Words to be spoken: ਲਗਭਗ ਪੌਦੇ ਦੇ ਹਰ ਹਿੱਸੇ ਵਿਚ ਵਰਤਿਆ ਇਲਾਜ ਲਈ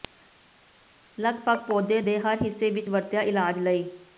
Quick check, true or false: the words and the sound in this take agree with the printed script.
true